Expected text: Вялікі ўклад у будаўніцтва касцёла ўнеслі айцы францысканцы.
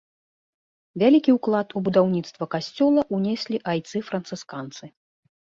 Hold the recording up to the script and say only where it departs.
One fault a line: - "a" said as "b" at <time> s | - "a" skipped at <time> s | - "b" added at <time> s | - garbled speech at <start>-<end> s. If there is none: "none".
none